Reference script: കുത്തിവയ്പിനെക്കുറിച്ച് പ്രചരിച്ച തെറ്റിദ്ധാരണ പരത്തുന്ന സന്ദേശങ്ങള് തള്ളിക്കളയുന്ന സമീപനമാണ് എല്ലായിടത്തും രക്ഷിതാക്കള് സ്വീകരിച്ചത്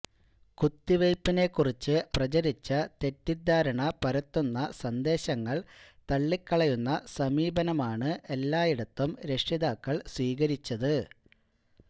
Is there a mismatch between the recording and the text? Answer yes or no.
no